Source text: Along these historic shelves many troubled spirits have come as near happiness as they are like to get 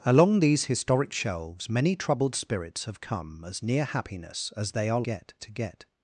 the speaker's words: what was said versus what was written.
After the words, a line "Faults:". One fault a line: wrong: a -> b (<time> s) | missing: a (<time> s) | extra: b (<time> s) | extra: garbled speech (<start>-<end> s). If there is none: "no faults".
Along these historic shelves many troubled spirits have come as near happiness as they are get to get
Faults:
wrong: like -> get (5.0 s)